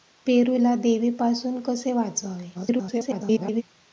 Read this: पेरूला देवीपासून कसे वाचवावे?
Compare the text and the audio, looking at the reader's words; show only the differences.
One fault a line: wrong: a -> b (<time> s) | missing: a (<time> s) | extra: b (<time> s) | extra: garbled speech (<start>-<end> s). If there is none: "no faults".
extra: garbled speech (2.5-3.6 s)